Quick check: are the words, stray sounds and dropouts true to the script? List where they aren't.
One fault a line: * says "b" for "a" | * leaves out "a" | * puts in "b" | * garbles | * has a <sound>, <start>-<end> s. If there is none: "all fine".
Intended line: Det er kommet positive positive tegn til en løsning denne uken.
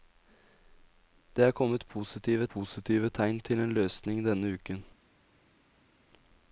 all fine